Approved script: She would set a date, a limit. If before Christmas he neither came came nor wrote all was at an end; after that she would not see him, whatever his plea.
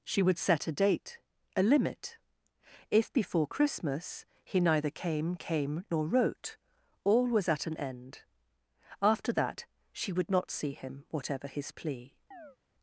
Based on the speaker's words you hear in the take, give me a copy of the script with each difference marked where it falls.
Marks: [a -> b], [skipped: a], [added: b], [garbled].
She would set a date, a limit. If before Christmas he neither came came nor wrote all was at an end; after that she would not see him, whatever his plea.